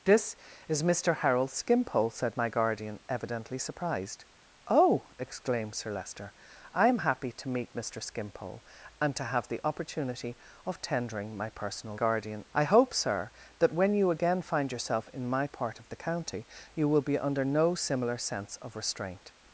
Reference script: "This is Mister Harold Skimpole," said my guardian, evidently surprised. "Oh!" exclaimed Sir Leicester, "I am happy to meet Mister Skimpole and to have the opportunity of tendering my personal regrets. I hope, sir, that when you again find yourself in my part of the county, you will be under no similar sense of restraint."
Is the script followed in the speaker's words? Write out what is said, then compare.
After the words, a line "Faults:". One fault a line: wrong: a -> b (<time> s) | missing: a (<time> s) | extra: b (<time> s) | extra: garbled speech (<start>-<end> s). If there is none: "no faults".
"This is Mister Harold Skimpole," said my guardian, evidently surprised. "Oh!" exclaimed Sir Leicester, "I am happy to meet Mister Skimpole and to have the opportunity of tendering my personal guardian. I hope, sir, that when you again find yourself in my part of the county, you will be under no similar sense of restraint."
Faults:
wrong: regrets -> guardian (11.9 s)